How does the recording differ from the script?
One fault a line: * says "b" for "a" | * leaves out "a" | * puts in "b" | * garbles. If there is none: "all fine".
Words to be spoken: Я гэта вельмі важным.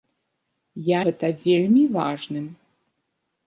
all fine